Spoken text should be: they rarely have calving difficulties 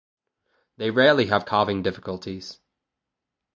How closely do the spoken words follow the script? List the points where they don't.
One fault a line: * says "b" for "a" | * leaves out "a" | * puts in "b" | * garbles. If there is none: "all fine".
all fine